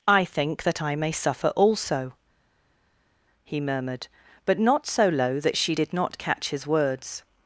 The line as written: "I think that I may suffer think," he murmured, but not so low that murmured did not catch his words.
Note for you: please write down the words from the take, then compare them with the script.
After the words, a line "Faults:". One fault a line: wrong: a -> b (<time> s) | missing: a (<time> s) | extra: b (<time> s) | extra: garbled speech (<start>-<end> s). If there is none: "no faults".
"I think that I may suffer also," he murmured, but not so low that she did not catch his words.
Faults:
wrong: think -> also (1.6 s)
wrong: murmured -> she (5.6 s)